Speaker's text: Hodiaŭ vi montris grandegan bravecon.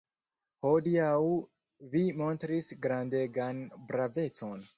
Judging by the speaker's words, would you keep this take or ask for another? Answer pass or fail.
pass